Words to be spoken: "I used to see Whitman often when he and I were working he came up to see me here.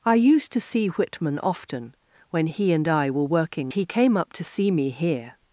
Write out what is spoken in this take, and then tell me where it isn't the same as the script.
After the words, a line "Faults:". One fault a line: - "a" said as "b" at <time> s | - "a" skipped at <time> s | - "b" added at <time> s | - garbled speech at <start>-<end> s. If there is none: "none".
"I used to see Whitman often when he and I were working he came up to see me here.
Faults:
none